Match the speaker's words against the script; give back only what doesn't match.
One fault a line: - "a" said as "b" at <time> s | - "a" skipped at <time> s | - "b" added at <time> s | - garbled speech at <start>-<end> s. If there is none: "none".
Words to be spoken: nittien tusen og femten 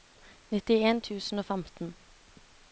none